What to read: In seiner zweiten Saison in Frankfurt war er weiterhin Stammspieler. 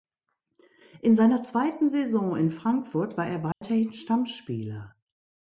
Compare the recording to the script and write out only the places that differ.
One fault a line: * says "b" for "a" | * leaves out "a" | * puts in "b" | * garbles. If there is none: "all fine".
all fine